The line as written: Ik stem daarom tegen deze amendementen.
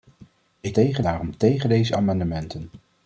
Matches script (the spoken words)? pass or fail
fail